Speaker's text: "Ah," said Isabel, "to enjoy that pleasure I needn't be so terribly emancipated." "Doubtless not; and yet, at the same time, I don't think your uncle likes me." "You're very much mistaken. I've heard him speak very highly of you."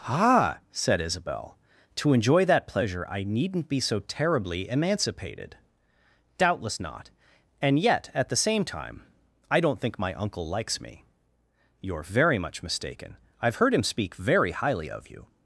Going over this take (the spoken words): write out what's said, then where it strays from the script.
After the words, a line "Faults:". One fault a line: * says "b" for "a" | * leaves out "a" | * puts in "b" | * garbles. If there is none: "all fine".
"Ah," said Isabel, "to enjoy that pleasure I needn't be so terribly emancipated." "Doubtless not; and yet, at the same time, I don't think my uncle likes me." "You're very much mistaken. I've heard him speak very highly of you."
Faults:
* says "my" for "your"